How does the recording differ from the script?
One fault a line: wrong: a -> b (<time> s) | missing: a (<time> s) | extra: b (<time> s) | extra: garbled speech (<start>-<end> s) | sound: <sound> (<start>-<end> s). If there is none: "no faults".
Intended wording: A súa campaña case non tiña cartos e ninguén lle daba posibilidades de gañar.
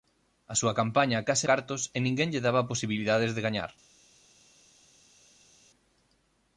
missing: non tiña (1.5 s)